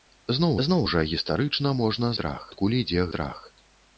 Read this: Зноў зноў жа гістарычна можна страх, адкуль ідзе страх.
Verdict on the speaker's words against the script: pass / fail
pass